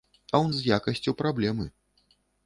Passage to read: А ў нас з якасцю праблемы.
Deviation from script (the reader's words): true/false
true